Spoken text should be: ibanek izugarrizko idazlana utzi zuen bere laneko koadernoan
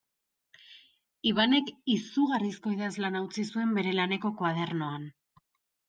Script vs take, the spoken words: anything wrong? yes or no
no